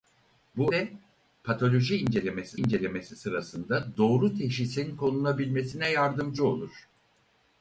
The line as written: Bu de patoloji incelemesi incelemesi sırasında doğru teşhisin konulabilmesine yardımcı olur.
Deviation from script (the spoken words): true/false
false